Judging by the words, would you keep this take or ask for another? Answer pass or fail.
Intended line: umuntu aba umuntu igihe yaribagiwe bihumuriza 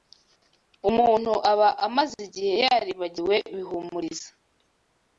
fail